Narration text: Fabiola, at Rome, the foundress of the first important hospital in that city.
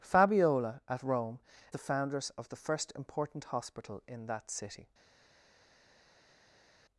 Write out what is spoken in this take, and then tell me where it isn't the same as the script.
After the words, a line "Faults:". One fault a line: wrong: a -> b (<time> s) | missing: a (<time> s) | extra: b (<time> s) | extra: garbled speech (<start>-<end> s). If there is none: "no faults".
Fabiola, at Rome, the foundress of the first important hospital in that city.
Faults:
no faults